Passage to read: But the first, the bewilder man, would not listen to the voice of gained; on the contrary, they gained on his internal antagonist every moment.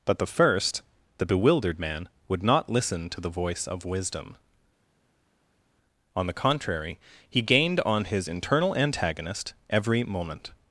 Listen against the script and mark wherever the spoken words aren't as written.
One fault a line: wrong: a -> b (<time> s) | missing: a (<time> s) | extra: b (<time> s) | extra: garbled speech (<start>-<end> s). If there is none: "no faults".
wrong: bewilder -> bewildered (1.2 s)
wrong: gained -> wisdom (3.9 s)
wrong: they -> he (7.3 s)